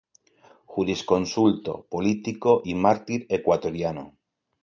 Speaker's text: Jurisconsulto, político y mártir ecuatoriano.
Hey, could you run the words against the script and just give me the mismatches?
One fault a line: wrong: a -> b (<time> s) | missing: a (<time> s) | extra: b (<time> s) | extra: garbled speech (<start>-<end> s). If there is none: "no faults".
no faults